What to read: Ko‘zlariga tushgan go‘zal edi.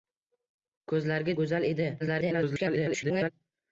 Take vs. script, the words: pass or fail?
fail